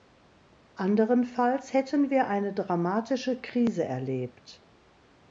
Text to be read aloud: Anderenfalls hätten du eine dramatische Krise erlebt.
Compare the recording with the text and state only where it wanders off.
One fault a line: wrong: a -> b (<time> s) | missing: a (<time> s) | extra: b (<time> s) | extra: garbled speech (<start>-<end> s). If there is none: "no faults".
wrong: du -> wir (2.1 s)